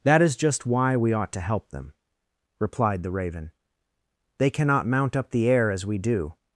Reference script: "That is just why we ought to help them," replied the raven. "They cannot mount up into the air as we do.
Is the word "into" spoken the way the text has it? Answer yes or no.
no